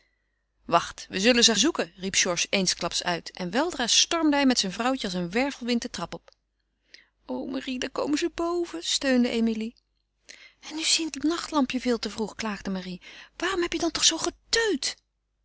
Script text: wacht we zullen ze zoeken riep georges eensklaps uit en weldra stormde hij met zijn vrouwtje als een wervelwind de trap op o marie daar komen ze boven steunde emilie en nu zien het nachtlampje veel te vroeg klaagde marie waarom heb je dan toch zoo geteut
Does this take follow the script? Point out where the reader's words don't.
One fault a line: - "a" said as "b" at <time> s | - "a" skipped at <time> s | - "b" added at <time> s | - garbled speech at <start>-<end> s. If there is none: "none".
none